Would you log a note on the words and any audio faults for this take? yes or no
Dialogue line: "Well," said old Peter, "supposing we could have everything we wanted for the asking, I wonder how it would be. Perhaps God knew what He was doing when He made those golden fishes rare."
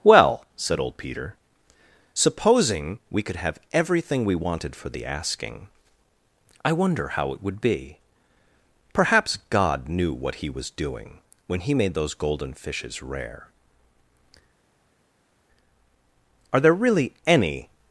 yes